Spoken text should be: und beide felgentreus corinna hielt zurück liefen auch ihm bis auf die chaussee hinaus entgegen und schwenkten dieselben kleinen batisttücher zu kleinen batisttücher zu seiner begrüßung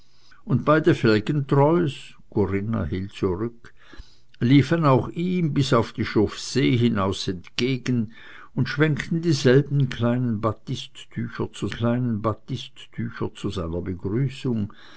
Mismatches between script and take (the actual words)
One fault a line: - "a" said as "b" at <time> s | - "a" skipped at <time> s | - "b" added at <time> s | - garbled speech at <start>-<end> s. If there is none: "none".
none